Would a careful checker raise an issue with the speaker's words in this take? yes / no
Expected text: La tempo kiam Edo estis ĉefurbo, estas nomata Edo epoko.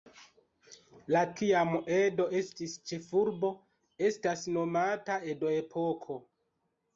yes